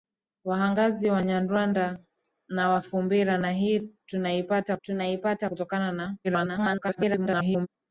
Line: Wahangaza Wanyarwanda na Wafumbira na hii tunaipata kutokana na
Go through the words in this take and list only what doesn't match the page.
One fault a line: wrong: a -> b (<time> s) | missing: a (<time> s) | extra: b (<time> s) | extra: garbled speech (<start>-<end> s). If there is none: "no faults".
extra: tunaipata (4.8 s)
extra: garbled speech (6.2-7.7 s)